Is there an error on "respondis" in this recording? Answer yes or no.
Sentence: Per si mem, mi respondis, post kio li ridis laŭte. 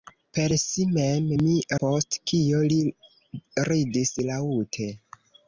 yes